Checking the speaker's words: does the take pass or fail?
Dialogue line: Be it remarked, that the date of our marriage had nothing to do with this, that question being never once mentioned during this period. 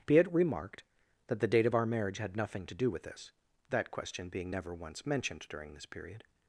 pass